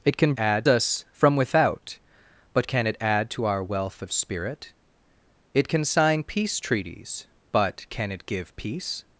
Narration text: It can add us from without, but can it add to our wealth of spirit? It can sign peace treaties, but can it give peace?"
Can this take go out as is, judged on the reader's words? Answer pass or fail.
pass